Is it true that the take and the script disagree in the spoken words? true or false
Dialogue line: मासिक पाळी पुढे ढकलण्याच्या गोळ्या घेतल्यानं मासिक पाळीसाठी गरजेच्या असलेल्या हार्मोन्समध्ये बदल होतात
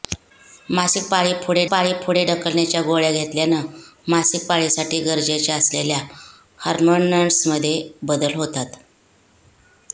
true